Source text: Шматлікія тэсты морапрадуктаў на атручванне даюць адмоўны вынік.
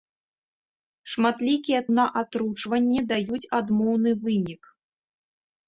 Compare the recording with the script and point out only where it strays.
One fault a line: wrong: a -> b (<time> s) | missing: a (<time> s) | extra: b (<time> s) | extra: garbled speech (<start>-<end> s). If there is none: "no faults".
missing: тэсты морапрадуктаў (1.8 s)